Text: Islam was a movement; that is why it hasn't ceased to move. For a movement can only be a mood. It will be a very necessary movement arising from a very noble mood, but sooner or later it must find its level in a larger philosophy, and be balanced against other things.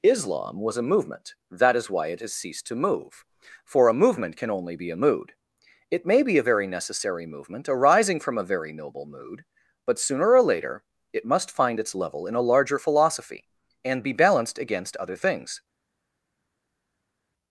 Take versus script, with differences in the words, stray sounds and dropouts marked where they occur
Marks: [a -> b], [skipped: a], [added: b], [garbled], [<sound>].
Islam was a movement; that is why it [hasn't -> has] ceased to move. For a movement can only be a mood. It [will -> may] be a very necessary movement arising from a very noble mood, but sooner or later it must find its level in a larger philosophy, and be balanced against other things.